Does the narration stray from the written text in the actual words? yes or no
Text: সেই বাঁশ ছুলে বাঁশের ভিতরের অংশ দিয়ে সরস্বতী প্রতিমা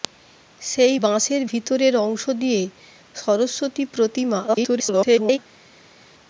yes